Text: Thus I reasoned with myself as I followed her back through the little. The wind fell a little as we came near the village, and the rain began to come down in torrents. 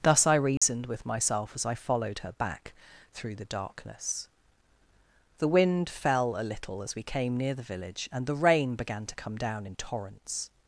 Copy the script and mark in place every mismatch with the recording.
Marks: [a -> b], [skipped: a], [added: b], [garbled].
Thus I reasoned with myself as I followed her back through the [little. -> darkness] The wind fell a little as we came near the village, and the rain began to come down in torrents.